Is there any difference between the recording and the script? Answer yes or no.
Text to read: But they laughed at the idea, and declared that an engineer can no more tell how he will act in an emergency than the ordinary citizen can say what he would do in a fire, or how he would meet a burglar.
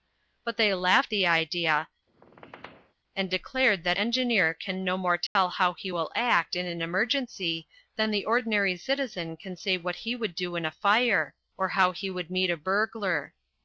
yes